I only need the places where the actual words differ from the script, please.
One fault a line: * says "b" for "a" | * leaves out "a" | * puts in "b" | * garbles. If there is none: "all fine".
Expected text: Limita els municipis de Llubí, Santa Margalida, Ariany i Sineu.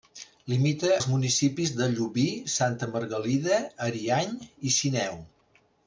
all fine